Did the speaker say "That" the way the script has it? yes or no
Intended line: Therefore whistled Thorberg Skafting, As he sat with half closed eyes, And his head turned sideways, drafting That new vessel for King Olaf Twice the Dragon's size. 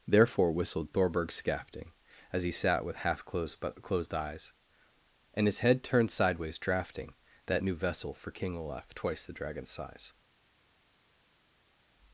yes